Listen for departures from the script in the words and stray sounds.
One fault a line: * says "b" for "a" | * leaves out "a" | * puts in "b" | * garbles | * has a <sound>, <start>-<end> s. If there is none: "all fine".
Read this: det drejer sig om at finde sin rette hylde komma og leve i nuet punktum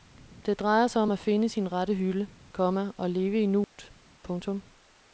* has a dropout, 3.6-3.8 s